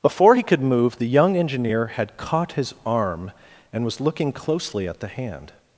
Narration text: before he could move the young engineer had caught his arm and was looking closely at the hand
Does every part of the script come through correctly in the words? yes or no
yes